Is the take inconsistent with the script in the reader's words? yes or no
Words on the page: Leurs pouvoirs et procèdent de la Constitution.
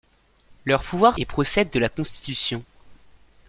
no